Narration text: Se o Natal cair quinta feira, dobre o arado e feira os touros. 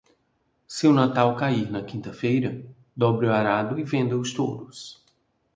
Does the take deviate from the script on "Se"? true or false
false